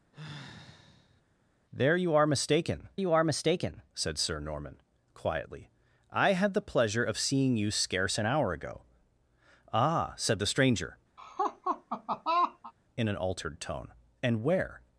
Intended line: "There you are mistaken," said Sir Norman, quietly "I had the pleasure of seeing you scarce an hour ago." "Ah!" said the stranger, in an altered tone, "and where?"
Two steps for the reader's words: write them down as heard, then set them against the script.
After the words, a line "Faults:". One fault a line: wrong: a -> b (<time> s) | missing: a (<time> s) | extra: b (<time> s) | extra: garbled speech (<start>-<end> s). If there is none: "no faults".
"There you are mistaken you are mistaken," said Sir Norman, quietly "I had the pleasure of seeing you scarce an hour ago." "Ah!" said the stranger, in an altered tone, "and where?"
Faults:
extra: you are mistaken (3.0 s)